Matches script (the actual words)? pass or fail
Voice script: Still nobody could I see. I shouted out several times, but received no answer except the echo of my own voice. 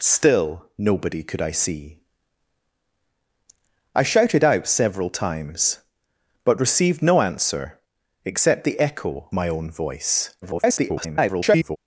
fail